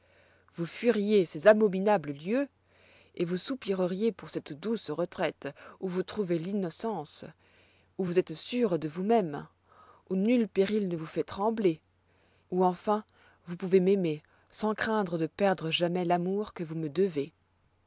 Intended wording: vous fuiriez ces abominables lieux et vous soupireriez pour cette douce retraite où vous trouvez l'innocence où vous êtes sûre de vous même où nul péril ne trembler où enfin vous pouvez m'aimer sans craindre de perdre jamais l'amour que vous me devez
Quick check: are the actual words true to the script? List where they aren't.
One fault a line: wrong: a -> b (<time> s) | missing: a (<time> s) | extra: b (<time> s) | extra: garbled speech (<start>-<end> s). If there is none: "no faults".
extra: vous fait (10.9 s)